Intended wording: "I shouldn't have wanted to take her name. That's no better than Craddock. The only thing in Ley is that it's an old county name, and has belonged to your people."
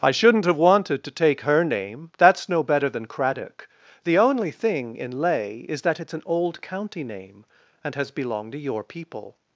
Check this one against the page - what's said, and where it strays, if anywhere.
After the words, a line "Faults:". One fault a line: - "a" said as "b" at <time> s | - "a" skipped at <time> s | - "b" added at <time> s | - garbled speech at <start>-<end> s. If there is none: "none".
"I shouldn't have wanted to take her name. That's no better than Craddock. The only thing in Ley is that it's an old county name, and has belonged to your people."
Faults:
none